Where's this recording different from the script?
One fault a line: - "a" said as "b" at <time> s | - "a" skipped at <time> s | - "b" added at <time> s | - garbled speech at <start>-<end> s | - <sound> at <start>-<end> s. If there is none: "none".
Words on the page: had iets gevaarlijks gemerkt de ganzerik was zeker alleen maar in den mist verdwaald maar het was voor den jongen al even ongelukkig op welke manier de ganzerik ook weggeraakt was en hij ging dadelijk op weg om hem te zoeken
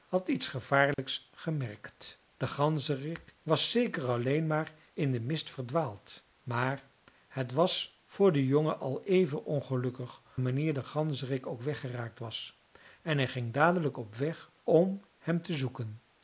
- dropout at 0.9-1.0 s
- "op welke" skipped at 10.2 s